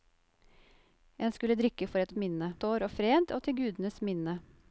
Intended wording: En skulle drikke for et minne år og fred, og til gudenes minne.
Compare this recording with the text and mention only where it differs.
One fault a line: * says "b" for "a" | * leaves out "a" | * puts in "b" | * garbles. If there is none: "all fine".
all fine